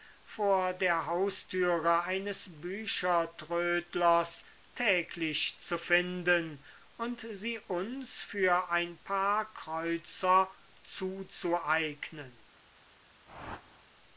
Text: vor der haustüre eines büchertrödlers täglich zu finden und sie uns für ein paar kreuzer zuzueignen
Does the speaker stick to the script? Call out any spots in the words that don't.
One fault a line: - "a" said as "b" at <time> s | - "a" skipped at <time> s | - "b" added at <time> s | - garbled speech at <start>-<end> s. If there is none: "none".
none